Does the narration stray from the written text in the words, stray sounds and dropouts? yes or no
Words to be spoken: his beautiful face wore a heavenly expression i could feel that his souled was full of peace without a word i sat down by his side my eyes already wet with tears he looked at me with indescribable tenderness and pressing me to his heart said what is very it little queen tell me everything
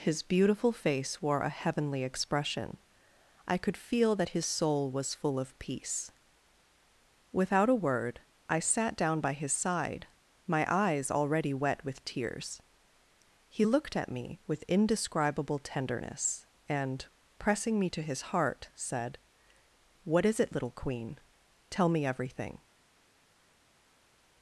yes